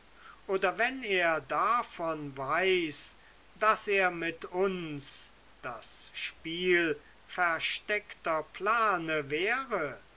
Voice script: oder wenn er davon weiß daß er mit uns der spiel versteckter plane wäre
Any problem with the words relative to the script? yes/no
yes